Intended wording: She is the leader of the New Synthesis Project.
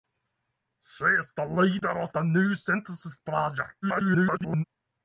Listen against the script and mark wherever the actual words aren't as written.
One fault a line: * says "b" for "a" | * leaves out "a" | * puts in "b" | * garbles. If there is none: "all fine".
* garbles